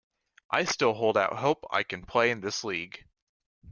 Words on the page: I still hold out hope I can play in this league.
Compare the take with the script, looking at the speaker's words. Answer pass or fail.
pass